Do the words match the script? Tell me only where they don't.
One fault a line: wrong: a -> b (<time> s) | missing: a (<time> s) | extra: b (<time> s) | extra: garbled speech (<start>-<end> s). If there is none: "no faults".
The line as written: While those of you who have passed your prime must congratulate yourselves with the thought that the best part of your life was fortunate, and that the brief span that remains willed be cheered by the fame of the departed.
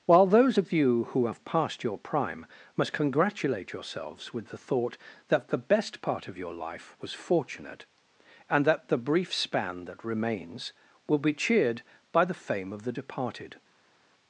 wrong: willed -> will (11.1 s)